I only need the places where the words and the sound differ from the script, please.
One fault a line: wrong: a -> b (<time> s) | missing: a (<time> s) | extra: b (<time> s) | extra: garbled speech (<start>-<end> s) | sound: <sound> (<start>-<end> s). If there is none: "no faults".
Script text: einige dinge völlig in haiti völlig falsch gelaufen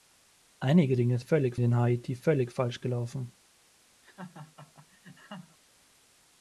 sound: laugh (4.0-5.6 s)